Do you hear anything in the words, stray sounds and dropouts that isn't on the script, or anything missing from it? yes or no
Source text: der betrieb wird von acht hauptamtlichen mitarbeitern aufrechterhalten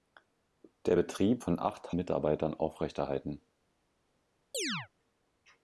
yes